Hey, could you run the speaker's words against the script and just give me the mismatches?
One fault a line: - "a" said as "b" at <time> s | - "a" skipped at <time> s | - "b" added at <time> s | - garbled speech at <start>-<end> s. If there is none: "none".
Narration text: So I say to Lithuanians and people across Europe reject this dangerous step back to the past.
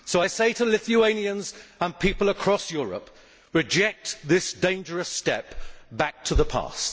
none